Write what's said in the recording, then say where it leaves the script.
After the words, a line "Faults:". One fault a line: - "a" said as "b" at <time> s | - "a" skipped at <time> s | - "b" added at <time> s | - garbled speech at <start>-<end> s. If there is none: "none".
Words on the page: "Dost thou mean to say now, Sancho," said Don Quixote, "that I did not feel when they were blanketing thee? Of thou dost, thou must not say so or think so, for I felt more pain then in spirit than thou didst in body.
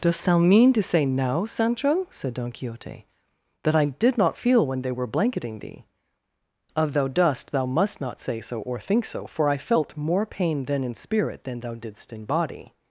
"Dost thou mean to say now, Sancho," said Don Quixote, "that I did not feel when they were blanketing thee? Of thou dost, thou must not say so or think so, for I felt more pain then in spirit than thou didst in body.
Faults:
none